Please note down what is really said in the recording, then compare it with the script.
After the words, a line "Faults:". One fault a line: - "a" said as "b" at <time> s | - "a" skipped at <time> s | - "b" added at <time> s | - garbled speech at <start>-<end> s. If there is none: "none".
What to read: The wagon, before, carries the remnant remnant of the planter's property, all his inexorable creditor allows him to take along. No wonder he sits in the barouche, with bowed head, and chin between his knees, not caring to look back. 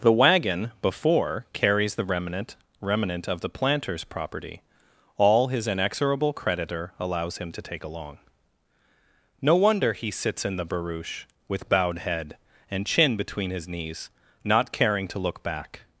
The wagon, before, carries the remnant remnant of the planter's property, all his inexorable creditor allows him to take along. No wonder he sits in the barouche, with bowed head, and chin between his knees, not caring to look back.
Faults:
none